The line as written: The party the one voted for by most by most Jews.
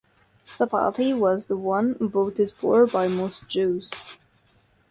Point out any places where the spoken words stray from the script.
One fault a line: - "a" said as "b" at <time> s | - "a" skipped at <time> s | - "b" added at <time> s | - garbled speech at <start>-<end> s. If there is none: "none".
- "was" added at 1.1 s
- "by most" skipped at 3.5 s